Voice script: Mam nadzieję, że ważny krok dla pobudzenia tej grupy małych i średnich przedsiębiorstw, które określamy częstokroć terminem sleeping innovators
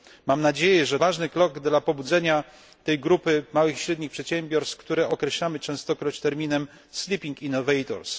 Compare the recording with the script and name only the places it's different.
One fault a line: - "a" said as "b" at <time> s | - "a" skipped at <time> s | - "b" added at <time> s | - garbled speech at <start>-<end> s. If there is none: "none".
none